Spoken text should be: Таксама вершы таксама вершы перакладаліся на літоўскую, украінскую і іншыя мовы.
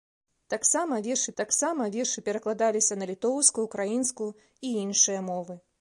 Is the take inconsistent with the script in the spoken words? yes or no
no